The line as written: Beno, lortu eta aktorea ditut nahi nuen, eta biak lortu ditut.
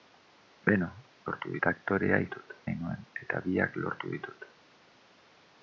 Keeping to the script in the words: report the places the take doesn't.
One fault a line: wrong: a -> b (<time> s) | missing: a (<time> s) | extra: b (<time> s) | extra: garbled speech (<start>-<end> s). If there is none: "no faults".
no faults